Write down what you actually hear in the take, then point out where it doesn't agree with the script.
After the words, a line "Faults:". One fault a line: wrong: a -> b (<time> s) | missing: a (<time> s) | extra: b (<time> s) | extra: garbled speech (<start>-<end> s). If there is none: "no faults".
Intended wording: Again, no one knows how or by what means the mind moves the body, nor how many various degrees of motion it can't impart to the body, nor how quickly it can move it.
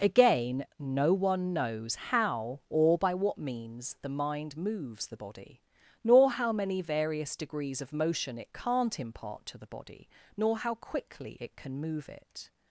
Again, no one knows how or by what means the mind moves the body, nor how many various degrees of motion it can't impart to the body, nor how quickly it can move it.
Faults:
no faults